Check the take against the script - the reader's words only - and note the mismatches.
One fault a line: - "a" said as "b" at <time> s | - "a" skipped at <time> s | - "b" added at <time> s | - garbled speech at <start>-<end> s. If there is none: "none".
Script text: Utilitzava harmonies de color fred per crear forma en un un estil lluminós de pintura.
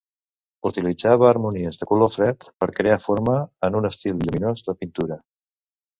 - "un" skipped at 3.9 s